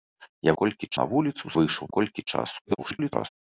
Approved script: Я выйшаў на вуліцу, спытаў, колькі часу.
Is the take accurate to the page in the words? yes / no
no